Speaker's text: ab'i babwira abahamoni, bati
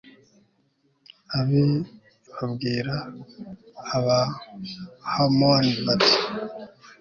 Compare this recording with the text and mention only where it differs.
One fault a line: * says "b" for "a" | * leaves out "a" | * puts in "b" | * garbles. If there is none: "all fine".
all fine